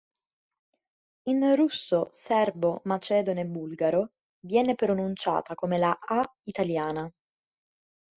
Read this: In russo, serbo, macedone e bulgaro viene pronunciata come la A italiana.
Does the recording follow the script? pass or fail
pass